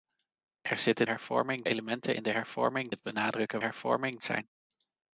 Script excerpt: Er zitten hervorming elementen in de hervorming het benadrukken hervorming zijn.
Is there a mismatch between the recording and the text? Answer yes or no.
no